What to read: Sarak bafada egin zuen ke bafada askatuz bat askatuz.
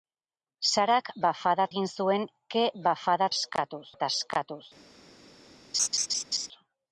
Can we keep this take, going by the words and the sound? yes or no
no